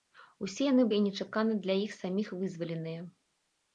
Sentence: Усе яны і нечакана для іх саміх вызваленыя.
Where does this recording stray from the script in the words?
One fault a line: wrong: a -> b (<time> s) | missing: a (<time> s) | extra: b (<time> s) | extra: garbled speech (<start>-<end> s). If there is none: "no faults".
no faults